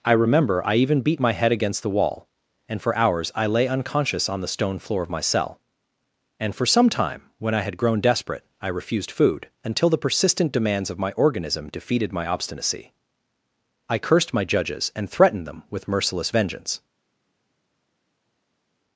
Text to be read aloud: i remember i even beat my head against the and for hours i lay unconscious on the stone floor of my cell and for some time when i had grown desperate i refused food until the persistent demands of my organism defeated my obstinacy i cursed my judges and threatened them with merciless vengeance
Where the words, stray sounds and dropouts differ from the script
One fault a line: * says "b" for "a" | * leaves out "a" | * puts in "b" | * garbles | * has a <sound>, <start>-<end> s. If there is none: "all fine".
* puts in "wall"